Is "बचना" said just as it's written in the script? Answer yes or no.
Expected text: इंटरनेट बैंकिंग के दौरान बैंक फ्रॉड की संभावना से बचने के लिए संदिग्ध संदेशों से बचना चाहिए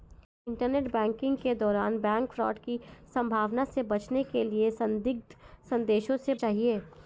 no